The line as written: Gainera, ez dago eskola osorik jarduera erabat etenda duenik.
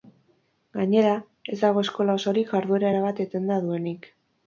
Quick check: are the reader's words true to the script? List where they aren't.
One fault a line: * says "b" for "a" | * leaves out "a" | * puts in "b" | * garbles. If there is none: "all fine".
all fine